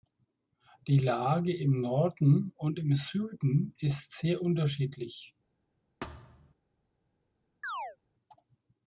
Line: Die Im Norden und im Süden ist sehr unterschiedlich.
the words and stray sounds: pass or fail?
fail